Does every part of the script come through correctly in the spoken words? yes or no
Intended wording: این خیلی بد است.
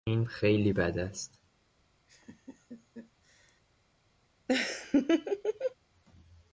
yes